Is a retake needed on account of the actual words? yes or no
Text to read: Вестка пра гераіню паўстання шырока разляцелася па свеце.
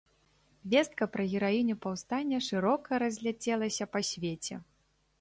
no